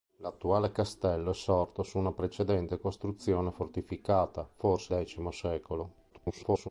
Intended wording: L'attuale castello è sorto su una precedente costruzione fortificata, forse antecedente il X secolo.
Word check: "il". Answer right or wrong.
wrong